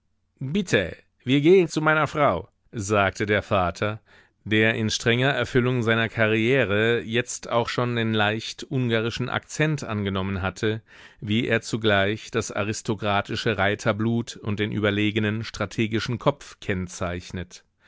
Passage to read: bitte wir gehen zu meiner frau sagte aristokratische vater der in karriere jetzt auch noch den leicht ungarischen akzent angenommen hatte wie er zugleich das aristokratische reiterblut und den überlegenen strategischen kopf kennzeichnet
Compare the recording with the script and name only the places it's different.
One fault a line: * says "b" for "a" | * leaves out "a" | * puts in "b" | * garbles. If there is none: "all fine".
* says "der" for "aristokratische"
* puts in "strenger erfüllung seiner"
* says "schon" for "noch"